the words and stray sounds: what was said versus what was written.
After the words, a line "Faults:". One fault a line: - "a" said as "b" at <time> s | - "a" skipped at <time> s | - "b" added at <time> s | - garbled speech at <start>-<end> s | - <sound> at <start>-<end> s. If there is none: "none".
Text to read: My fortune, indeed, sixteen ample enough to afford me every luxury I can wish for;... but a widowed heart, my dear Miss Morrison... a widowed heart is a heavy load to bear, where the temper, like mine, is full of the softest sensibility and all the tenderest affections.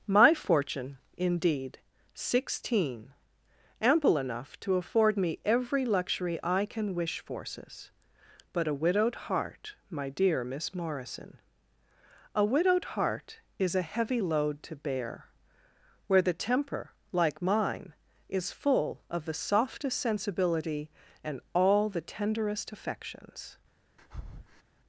My fortune, indeed, sixteen ample enough to afford me every luxury I can wish forces;... but a widowed heart, my dear Miss Morrison... a widowed heart is a heavy load to bear, where the temper, like mine, is full of the softest sensibility and all the tenderest affections.
Faults:
- "for" said as "forces" at 7.2 s
- breath at 24.0-24.6 s